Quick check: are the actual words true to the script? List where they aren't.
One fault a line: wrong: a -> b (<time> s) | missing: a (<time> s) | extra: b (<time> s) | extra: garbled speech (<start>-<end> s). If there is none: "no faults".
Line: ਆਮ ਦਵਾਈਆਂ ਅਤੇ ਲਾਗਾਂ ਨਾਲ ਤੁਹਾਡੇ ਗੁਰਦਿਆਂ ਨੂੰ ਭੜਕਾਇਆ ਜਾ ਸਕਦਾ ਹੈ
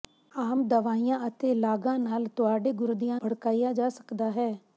missing: ਨੂੰ (3.2 s)